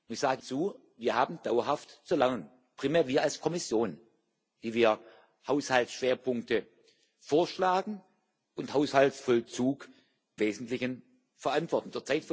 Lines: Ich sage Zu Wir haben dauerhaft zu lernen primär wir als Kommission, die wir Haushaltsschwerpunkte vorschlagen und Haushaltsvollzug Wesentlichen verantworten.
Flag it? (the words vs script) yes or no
no